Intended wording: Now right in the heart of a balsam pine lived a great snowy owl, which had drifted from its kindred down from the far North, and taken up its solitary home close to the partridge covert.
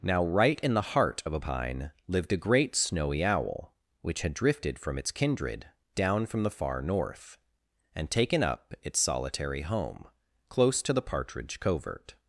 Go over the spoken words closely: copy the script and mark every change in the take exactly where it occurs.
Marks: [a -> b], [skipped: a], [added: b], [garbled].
Now right in the heart of a [skipped: balsam] pine lived a great snowy owl, which had drifted from its kindred down from the far North, and taken up its solitary home close to the partridge covert.